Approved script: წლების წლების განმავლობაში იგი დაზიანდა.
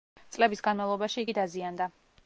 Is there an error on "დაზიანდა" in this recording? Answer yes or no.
no